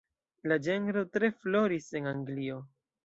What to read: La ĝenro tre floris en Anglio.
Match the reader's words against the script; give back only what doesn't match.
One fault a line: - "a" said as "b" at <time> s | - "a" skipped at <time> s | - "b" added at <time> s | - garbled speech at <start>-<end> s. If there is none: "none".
none